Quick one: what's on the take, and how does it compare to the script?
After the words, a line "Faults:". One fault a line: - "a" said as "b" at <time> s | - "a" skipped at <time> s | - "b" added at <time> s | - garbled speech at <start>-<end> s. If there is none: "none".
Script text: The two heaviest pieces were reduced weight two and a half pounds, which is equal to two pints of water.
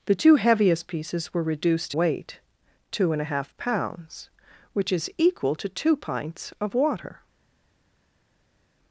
The two heaviest pieces were reduced weight two and a half pounds, which is equal to two pints of water.
Faults:
none